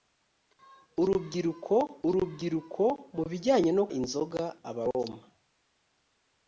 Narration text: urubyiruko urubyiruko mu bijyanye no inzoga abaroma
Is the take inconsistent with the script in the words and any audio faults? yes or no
no